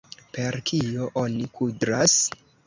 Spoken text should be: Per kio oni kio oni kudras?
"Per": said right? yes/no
yes